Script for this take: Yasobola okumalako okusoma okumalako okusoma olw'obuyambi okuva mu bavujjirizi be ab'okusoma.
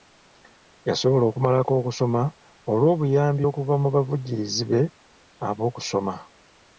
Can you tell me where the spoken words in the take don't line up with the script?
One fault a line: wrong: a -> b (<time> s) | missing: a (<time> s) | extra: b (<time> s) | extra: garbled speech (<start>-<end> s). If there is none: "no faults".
missing: okumalako okusoma (2.2 s)